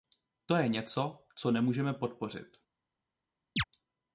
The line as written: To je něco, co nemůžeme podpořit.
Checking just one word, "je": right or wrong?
right